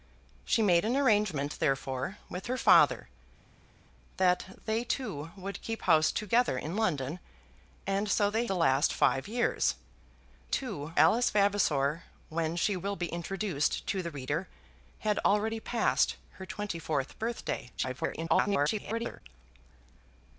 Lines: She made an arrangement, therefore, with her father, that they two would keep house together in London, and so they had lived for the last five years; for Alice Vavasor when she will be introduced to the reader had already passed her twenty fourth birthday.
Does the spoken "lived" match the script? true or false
false